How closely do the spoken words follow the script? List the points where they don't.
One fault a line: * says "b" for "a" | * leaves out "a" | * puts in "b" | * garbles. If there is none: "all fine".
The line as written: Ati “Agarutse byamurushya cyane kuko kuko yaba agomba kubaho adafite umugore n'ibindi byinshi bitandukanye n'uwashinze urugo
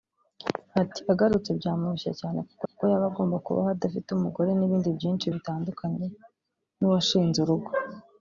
all fine